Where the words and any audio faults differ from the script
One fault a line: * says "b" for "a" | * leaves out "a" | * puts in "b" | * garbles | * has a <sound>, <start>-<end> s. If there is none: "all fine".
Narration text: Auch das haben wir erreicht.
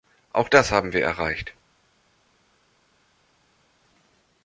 all fine